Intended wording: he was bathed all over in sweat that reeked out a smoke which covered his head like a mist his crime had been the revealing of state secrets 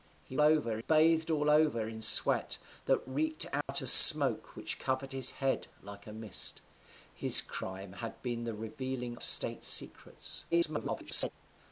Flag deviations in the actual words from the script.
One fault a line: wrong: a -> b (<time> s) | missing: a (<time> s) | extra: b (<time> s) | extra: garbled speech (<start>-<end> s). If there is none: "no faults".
wrong: was -> over (0.4 s)
missing: of (9.2 s)
extra: garbled speech (10.5-11.3 s)